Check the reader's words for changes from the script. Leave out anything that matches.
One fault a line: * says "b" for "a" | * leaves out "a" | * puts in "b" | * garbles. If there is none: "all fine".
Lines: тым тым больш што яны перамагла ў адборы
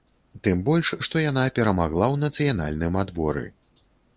* leaves out "тым"
* says "яна" for "яны"
* puts in "нацыянальным"